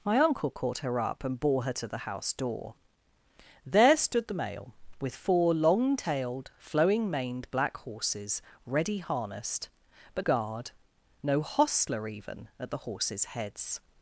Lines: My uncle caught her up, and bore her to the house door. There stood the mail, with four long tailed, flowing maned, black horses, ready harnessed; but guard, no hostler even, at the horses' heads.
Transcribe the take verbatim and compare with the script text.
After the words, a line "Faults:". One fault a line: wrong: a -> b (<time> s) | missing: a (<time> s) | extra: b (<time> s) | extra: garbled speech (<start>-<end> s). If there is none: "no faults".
My uncle caught her up, and bore her to the house door. There stood the mail, with four long tailed, flowing maned, black horses, ready harnessed; but guard, no hostler even, at the horses' heads.
Faults:
no faults